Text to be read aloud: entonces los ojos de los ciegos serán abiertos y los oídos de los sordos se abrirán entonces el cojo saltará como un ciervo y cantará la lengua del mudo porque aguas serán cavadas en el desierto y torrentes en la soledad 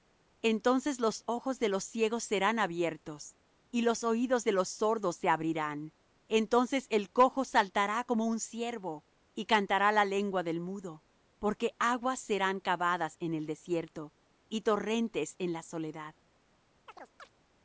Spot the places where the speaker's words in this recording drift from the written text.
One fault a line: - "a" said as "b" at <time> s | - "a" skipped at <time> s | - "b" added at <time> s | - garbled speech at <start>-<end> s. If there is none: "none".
none